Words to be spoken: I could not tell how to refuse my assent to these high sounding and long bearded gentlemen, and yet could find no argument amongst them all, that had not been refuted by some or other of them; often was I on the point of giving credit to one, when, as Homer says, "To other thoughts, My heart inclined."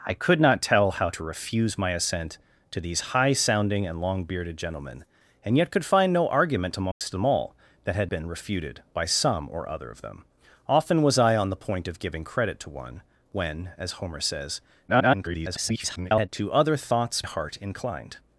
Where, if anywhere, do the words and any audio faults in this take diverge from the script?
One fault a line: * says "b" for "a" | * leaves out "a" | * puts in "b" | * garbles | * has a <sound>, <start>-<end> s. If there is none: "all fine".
* has a dropout, 6.9-7.0 s
* leaves out "not"
* garbles
* leaves out "My"